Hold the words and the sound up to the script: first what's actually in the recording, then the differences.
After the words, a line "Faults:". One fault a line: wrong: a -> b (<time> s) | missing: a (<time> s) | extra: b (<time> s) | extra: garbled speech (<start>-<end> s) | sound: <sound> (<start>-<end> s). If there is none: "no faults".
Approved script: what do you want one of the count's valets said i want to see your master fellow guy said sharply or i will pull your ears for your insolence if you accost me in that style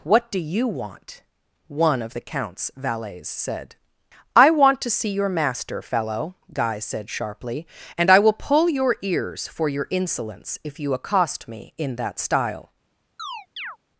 what do you want one of the count's valets said i want to see your master fellow guy said sharply and i will pull your ears for your insolence if you accost me in that style
Faults:
wrong: or -> and (8.0 s)
sound: chirp (13.2-13.8 s)